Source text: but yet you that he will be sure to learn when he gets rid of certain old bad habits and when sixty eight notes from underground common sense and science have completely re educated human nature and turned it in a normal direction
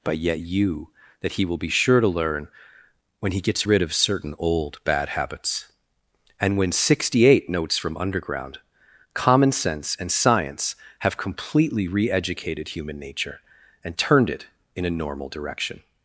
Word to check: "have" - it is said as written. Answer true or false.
true